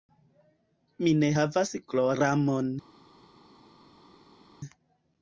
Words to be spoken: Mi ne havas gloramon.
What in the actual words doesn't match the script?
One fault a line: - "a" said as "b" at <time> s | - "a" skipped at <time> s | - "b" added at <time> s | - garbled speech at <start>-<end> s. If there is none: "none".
none